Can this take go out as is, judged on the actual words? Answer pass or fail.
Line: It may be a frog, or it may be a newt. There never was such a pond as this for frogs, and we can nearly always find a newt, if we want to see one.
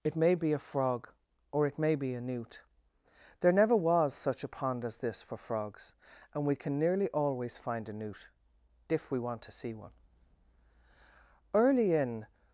fail